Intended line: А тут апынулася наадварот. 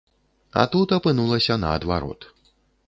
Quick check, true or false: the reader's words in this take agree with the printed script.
true